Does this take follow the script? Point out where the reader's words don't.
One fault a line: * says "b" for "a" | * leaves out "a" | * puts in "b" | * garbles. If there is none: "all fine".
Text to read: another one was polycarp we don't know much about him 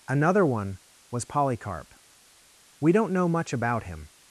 all fine